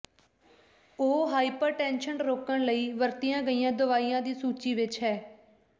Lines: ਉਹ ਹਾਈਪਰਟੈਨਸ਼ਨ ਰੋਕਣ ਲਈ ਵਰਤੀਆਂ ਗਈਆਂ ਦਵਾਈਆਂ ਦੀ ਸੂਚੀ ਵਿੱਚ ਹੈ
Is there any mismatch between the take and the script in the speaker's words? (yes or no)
no